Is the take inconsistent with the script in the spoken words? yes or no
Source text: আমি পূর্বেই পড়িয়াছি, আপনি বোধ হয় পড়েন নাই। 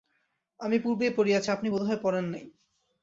no